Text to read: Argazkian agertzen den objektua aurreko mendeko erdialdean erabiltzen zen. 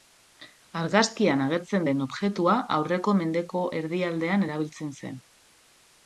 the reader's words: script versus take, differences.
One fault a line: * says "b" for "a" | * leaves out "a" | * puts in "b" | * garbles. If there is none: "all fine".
all fine